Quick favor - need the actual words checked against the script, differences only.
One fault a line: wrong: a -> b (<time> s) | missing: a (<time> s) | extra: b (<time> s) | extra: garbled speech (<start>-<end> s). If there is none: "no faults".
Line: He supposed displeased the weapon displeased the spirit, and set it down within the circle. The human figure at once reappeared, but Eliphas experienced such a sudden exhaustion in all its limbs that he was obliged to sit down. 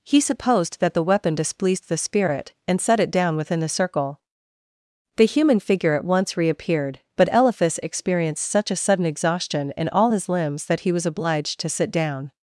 wrong: displeased -> that (0.8 s)
wrong: its -> his (10.1 s)